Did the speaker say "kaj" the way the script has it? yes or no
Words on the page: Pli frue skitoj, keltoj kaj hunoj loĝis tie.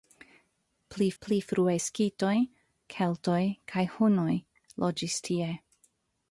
yes